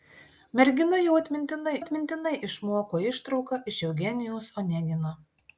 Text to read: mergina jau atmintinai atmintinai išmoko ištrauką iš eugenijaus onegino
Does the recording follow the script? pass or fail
pass